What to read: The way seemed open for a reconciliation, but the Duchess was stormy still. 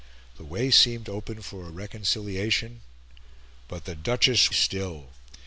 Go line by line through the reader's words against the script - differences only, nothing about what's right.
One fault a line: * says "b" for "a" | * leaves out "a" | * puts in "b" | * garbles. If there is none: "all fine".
* leaves out "was stormy"